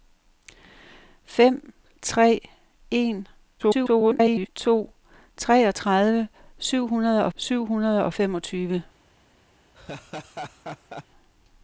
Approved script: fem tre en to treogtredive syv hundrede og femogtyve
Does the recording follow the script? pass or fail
fail